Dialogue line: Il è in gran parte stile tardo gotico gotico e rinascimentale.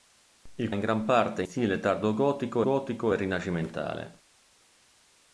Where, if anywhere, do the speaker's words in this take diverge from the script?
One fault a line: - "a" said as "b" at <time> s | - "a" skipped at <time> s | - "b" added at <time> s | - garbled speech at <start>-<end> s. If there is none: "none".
none